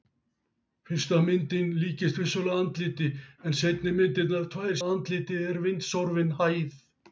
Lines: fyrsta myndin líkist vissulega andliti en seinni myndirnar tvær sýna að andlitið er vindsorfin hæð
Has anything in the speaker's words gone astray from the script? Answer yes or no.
yes